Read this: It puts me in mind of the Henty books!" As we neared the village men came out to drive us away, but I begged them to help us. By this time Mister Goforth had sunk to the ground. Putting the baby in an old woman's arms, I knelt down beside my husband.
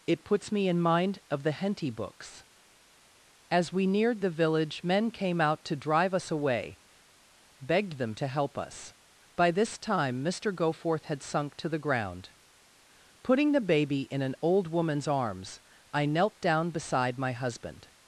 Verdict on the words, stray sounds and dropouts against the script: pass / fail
fail